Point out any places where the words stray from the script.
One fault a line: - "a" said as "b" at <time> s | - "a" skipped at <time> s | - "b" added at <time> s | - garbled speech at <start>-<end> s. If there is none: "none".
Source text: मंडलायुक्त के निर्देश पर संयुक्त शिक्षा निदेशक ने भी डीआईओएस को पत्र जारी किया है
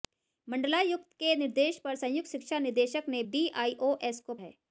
- "भी" skipped at 3.2 s
- "पत्र जारी किया" skipped at 4.3 s